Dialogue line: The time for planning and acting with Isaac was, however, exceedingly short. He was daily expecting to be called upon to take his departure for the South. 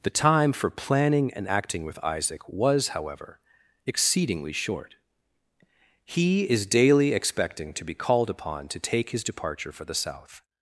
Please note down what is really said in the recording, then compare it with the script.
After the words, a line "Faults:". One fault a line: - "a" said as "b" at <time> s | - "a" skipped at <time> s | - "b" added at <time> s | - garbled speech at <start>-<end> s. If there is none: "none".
The time for planning and acting with Isaac was, however, exceedingly short. He is daily expecting to be called upon to take his departure for the South.
Faults:
- "was" said as "is" at 6.5 s